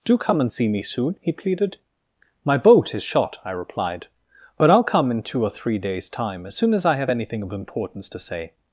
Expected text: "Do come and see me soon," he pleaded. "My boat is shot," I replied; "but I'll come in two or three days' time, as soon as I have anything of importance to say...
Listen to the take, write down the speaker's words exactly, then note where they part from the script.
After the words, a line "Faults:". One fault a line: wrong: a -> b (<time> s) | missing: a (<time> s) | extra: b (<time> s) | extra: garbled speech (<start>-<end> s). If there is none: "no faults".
"Do come and see me soon," he pleaded. "My boat is shot," I replied; "but I'll come in two or three days' time, as soon as I have anything of importance to say...
Faults:
no faults